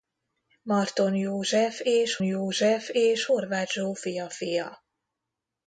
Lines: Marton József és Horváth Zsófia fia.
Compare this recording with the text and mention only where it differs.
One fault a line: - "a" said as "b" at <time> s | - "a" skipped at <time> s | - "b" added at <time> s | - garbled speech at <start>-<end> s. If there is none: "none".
- "József és" added at 2.2 s